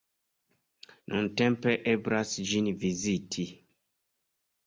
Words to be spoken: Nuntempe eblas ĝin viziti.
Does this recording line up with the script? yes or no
yes